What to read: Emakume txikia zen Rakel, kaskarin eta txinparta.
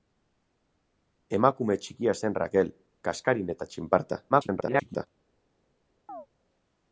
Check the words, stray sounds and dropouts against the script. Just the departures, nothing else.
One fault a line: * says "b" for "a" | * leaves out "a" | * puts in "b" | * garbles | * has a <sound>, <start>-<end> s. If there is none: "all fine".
* garbles
* has a chirp, 6.1-6.3 s